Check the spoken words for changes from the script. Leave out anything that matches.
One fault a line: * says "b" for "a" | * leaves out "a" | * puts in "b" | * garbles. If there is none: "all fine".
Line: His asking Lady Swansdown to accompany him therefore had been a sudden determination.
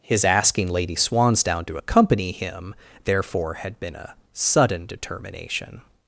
all fine